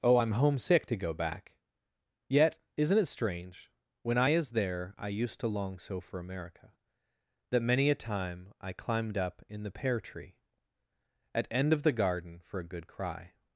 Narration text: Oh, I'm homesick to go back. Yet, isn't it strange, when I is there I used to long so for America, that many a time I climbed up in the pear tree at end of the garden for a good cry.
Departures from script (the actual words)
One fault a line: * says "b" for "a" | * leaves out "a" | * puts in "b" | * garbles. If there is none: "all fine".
all fine